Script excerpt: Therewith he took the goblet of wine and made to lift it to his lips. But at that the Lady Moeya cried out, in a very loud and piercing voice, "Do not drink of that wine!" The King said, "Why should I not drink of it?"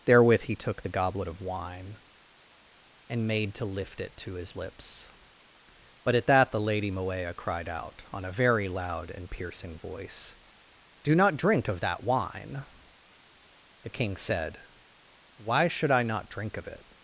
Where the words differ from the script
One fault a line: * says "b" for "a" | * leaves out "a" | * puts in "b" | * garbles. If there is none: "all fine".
* says "on" for "in"